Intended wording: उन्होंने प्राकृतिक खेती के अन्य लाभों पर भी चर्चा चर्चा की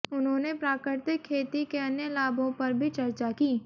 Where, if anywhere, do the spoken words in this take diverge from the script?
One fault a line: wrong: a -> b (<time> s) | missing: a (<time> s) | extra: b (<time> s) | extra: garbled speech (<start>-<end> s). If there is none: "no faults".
missing: चर्चा (3.3 s)